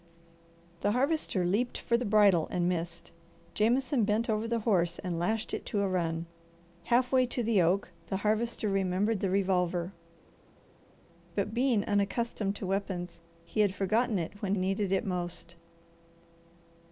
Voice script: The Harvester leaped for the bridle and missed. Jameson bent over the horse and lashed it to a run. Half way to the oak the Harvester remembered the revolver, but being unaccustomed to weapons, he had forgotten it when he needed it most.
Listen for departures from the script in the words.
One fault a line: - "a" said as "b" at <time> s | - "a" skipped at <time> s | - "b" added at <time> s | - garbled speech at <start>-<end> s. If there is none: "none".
- "he" skipped at 14.6 s